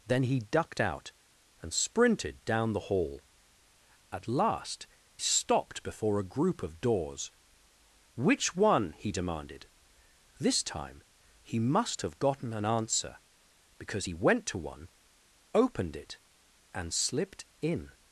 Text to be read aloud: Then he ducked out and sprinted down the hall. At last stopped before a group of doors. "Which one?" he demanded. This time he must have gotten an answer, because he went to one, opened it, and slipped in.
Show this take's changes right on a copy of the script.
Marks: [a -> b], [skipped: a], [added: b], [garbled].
Then he ducked out and sprinted down the hall. At last stopped before a group of doors. "Which one?" he demanded. This time he must have gotten an answer, because he went to one, opened it, and slipped in.